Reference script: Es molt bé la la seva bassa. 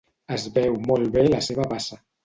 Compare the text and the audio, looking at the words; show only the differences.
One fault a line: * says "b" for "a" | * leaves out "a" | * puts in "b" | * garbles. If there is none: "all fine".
* puts in "veu"
* leaves out "la"